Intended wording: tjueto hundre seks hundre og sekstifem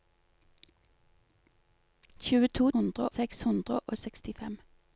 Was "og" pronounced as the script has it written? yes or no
yes